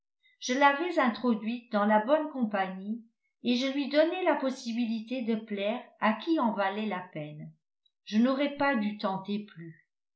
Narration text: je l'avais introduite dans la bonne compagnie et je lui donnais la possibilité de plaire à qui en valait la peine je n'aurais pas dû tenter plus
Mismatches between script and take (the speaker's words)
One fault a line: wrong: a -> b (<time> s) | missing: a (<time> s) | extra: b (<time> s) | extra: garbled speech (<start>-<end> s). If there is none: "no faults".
no faults